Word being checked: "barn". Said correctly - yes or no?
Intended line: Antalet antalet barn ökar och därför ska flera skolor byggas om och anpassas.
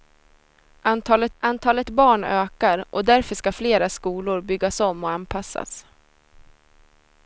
yes